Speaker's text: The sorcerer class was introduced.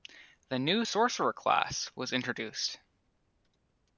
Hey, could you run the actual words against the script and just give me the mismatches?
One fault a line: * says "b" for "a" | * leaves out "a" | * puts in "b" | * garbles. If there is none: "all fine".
* puts in "new"